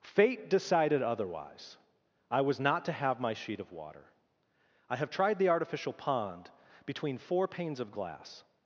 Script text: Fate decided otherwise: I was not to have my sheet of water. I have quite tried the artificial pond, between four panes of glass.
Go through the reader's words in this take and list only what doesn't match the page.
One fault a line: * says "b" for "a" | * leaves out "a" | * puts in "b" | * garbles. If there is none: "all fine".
* leaves out "quite"